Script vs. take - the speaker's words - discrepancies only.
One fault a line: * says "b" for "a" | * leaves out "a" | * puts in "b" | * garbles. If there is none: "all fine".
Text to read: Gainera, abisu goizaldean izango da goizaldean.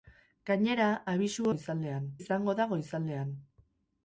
all fine